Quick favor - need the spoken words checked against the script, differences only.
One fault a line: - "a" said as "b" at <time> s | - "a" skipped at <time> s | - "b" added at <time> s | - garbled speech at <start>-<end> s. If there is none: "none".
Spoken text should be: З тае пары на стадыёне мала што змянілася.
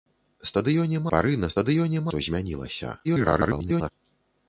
- "тае" said as "стадыёне" at 0.5 s
- "мала" skipped at 2.1 s
- garbled speech at 3.0-3.9 s